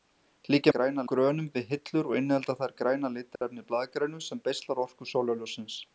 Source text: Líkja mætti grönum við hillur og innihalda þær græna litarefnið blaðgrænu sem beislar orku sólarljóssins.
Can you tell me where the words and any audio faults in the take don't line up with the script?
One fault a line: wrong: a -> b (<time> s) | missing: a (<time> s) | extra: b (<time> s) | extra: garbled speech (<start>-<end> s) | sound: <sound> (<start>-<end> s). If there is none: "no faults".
wrong: mætti -> græna (0.8 s)
sound: dropout (3.4-3.4 s)